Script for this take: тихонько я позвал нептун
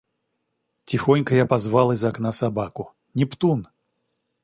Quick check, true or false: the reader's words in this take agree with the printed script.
false